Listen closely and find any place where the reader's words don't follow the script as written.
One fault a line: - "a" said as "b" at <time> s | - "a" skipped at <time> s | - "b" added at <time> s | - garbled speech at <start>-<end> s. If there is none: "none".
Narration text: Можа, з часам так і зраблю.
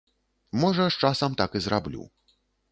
none